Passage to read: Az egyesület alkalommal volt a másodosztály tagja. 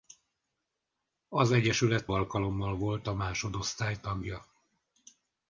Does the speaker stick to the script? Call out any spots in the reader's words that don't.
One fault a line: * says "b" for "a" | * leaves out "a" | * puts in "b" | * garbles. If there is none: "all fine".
all fine